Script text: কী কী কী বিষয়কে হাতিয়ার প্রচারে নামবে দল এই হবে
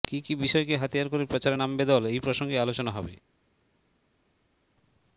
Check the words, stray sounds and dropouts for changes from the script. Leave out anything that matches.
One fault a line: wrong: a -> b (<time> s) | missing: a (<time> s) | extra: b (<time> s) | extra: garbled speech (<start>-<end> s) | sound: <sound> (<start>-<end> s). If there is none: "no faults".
missing: কী (0.3 s)
extra: করে (1.1 s)
extra: প্রসঙ্গে আলোচনা (2.2 s)